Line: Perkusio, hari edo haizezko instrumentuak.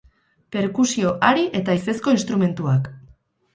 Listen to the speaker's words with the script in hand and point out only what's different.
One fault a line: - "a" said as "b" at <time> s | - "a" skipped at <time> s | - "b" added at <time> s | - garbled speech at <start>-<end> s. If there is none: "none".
- "edo" said as "eta" at 1.6 s